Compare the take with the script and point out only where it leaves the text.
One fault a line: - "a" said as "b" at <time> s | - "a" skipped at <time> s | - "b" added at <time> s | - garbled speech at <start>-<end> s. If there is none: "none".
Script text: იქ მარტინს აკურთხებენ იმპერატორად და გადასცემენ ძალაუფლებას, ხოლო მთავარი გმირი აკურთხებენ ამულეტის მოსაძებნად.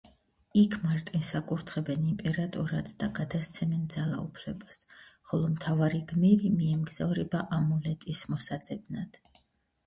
- "აკურთხებენ" said as "მიემგზავრება" at 6.6 s